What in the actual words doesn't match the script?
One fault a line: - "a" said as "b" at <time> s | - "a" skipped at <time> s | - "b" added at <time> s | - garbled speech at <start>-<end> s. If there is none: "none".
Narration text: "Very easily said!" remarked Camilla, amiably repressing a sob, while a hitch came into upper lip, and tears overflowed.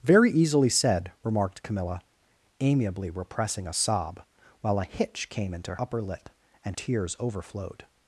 none